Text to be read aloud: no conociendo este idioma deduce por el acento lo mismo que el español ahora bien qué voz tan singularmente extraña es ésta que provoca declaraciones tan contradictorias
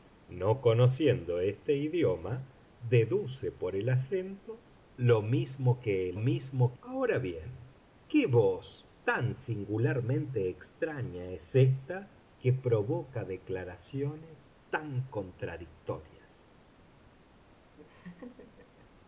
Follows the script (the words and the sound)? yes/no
no